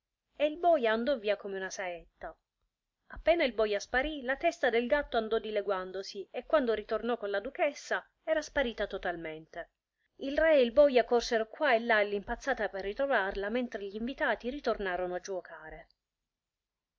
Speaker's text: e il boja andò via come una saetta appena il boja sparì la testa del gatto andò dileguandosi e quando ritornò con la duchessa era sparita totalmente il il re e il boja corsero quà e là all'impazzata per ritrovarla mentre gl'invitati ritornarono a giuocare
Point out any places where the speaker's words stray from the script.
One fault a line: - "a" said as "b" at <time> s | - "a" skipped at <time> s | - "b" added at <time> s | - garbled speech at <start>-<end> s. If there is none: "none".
- "il" skipped at 10.3 s